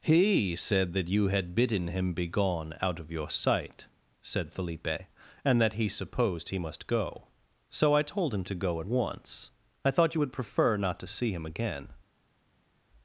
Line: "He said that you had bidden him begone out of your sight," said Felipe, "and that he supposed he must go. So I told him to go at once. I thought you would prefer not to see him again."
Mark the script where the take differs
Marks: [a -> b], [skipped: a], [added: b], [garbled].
"He said that you had bidden him begone out of your sight," said Felipe, "and that he supposed he must go. So I told him to go at once. I thought you would prefer not to see him again."